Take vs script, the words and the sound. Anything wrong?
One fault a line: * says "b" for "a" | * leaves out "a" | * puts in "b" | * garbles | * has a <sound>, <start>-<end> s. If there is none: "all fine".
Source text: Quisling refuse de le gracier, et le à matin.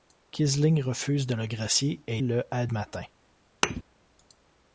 * has a thud, 3.6-3.8 s